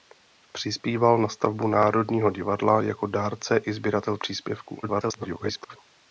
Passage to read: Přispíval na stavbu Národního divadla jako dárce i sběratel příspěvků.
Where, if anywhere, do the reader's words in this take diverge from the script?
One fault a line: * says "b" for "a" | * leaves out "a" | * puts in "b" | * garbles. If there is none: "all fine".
* garbles